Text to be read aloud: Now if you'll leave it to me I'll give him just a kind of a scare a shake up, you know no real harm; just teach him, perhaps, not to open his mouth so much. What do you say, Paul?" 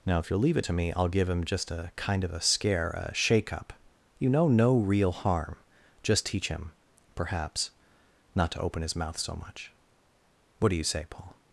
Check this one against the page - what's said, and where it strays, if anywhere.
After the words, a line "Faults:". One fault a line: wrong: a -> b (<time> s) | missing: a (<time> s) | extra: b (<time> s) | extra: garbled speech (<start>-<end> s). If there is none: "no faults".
Now if you'll leave it to me I'll give him just a kind of a scare a shake up, you know no real harm; just teach him, perhaps, not to open his mouth so much. What do you say, Paul?"
Faults:
no faults